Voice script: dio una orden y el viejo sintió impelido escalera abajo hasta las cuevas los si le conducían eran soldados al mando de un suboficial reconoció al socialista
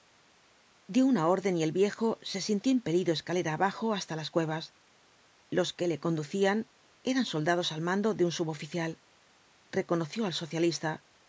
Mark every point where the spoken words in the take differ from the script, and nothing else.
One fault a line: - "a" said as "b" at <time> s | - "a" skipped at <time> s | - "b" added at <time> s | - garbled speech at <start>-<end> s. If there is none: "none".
- "se" added at 2.2 s
- "si" said as "que" at 5.7 s